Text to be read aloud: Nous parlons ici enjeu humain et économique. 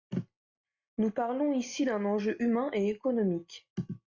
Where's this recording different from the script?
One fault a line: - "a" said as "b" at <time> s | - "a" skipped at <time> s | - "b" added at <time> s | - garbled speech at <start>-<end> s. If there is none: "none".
- "d'un" added at 1.8 s